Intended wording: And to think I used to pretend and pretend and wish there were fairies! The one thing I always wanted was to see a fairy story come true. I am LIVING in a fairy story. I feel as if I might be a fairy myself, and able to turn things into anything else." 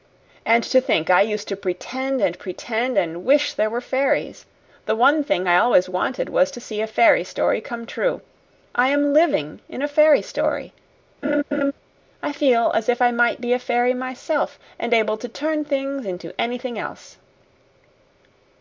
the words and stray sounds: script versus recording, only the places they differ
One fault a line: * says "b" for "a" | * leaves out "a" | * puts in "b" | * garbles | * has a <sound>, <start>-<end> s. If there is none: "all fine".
* has a laugh, 11.2-11.7 s